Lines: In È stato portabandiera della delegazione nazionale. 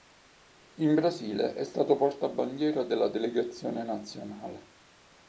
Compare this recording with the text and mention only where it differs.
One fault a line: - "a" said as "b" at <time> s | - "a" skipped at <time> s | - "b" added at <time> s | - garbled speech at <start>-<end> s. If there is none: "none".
- "Brasile" added at 0.9 s